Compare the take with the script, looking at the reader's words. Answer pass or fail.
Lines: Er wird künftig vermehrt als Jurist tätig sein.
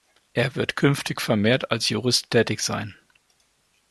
pass